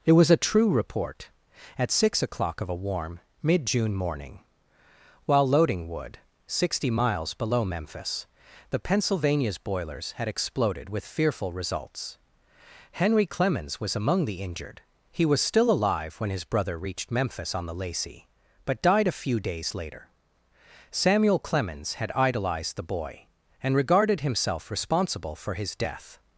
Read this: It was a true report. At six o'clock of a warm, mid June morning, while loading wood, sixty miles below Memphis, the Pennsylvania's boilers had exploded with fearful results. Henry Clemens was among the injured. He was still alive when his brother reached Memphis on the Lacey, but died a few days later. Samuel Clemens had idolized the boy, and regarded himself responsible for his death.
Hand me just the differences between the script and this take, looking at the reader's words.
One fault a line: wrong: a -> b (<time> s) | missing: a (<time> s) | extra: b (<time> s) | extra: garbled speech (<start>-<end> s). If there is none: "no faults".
no faults